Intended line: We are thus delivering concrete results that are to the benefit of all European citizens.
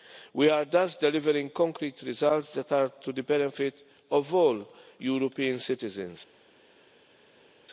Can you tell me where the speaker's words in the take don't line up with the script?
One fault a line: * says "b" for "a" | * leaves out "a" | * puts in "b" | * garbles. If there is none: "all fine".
all fine